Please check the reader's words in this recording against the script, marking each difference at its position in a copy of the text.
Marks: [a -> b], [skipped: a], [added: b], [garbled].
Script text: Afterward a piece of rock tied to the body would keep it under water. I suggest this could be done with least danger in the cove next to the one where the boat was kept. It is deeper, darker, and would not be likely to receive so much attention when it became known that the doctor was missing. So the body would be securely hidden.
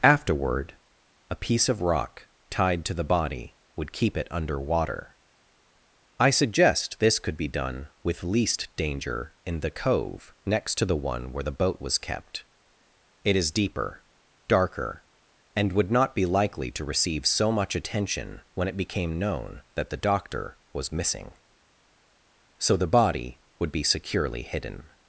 Afterward a piece of rock tied to the body would keep it under water. I suggest this could be done with least danger in the cove next to the one where the boat was kept. It is deeper, darker, and would not be likely to receive so much attention when it became known that the doctor was missing. So the body would be securely hidden.